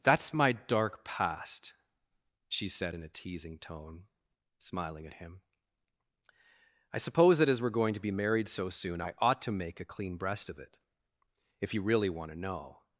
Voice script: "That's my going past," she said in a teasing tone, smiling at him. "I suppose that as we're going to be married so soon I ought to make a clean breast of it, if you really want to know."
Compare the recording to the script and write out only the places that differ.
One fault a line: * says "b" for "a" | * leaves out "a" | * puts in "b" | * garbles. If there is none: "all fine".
* says "dark" for "going"